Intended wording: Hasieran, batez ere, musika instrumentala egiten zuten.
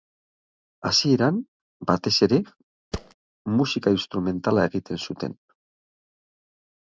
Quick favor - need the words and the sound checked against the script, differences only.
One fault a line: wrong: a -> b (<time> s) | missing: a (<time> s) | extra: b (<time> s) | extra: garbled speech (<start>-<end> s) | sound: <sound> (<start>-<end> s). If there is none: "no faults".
sound: thud (2.9-3.1 s)